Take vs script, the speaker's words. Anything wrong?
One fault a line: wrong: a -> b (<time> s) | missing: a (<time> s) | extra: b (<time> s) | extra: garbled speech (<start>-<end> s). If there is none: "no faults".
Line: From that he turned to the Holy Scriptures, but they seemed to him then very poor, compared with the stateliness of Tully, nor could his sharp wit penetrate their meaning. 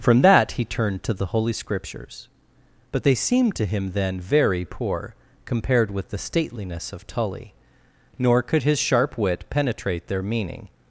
no faults